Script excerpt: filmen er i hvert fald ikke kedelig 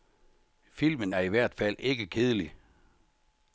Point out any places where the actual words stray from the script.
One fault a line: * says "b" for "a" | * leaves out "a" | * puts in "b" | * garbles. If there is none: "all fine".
all fine